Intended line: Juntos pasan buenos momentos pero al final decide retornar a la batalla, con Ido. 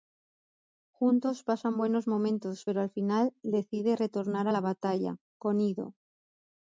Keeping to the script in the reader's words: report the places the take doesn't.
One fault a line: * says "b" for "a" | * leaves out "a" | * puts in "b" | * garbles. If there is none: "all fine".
all fine